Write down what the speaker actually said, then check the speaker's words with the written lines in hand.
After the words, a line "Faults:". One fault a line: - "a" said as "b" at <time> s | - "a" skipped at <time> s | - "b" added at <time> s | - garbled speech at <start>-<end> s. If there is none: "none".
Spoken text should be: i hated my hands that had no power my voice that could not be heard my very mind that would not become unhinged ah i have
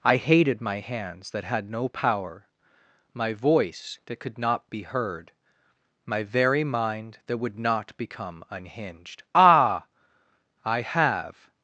i hated my hands that had no power my voice that could not be heard my very mind that would not become unhinged ah i have
Faults:
none